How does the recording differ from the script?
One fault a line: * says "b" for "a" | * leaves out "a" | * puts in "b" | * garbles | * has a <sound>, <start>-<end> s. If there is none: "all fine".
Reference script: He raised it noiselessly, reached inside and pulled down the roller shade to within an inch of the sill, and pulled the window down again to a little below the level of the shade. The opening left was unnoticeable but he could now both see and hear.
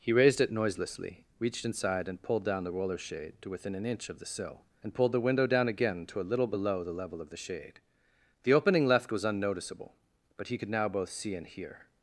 all fine